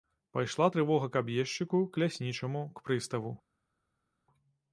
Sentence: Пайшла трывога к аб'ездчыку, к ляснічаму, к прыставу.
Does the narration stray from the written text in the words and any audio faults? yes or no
no